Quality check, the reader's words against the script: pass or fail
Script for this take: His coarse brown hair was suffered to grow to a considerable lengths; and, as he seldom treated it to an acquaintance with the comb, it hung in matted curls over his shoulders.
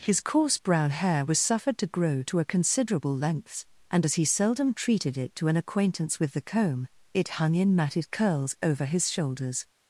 pass